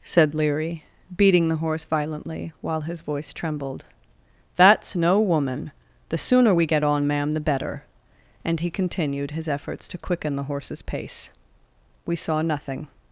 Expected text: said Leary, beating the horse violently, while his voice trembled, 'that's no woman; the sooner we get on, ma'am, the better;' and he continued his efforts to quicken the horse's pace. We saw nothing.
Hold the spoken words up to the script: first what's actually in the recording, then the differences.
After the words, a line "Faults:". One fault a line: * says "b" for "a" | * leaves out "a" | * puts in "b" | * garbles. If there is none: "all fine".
said Leary, beating the horse violently, while his voice trembled, 'that's no woman; the sooner we get on, ma'am, the better;' and he continued his efforts to quicken the horse's pace. We saw nothing.
Faults:
all fine